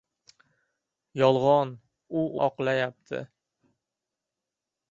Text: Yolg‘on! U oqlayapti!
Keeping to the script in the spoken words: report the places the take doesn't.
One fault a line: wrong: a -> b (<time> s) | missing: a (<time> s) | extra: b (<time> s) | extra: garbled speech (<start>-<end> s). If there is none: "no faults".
no faults